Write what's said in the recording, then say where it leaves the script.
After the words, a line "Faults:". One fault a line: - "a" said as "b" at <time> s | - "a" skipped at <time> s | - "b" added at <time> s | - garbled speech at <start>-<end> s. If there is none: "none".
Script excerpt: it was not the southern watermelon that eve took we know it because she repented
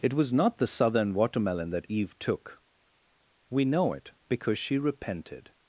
it was not the southern watermelon that eve took we know it because she repented
Faults:
none